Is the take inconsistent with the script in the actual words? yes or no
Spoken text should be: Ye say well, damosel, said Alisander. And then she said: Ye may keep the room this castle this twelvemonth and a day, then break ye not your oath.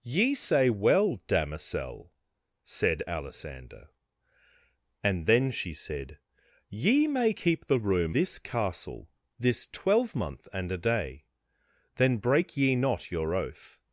no